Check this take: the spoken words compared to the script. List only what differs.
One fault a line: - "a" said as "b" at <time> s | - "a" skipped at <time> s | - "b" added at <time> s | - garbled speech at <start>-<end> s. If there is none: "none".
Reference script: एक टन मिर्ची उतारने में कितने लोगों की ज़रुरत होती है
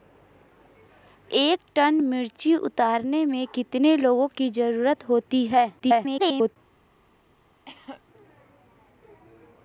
- garbled speech at 5.8-6.6 s